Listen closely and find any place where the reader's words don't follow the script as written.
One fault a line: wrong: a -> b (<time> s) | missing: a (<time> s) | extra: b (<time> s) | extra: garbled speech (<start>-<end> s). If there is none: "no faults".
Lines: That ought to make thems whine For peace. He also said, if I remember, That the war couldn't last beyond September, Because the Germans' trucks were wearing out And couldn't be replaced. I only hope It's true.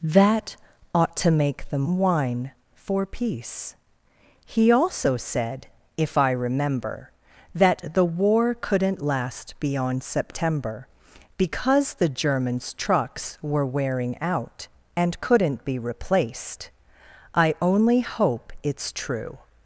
wrong: thems -> them (1.7 s)